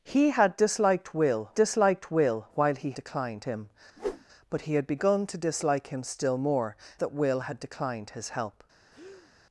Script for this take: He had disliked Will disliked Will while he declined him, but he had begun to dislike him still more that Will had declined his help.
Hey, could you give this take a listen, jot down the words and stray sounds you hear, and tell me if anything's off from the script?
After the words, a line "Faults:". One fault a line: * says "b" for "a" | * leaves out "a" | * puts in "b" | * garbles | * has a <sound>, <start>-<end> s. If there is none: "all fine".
He had disliked Will disliked Will while he declined him, but he had begun to dislike him still more that Will had declined his help.
Faults:
* has a whoosh, 4.0-4.2 s
* has a breath, 8.9-9.3 s